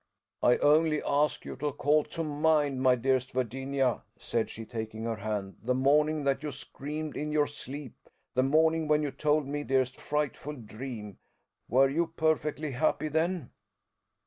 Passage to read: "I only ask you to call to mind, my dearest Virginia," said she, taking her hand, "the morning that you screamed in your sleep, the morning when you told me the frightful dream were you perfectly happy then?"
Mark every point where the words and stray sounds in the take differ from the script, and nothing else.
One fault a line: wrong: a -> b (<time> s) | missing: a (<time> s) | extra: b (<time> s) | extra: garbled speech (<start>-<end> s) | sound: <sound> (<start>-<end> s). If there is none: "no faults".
wrong: the -> dearest (9.6 s)